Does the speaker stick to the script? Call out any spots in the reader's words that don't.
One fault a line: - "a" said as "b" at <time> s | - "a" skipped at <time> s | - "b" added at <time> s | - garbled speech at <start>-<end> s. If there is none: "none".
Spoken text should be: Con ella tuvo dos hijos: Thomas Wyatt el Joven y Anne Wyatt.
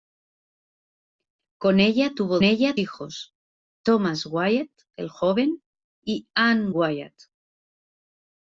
- "dos" said as "ella" at 2.4 s